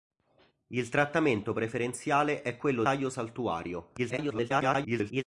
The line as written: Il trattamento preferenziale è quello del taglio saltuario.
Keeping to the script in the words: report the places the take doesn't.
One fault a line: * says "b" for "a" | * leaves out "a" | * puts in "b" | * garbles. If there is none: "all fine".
* leaves out "del"
* garbles